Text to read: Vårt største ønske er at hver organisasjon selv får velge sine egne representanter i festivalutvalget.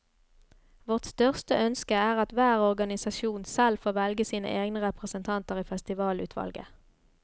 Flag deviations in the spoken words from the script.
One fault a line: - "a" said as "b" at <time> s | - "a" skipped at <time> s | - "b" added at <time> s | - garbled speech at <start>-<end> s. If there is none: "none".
none